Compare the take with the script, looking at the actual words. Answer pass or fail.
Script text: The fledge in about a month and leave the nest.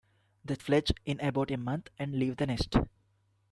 pass